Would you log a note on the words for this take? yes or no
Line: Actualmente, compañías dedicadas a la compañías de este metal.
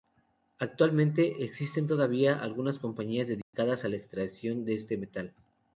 yes